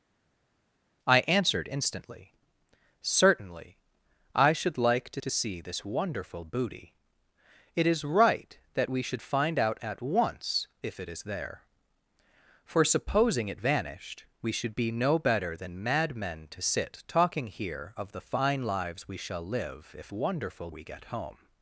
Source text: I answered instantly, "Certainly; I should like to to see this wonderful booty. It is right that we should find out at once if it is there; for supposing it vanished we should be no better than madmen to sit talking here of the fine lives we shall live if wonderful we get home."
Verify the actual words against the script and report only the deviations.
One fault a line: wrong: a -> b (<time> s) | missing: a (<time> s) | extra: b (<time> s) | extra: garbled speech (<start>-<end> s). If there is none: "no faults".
no faults